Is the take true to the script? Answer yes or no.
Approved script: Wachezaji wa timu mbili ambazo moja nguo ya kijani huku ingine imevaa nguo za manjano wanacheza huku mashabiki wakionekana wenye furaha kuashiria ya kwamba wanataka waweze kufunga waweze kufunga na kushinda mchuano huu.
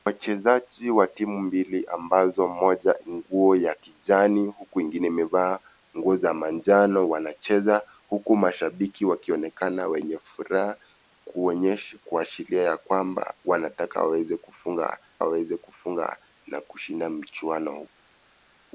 yes